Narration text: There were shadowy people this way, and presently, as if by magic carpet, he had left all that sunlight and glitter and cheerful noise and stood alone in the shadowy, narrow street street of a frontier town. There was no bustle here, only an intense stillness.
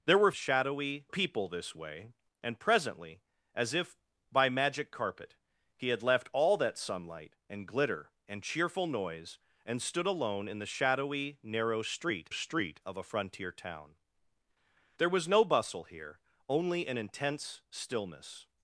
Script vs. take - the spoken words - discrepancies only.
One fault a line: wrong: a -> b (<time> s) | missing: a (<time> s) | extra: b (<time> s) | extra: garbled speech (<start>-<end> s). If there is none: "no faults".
no faults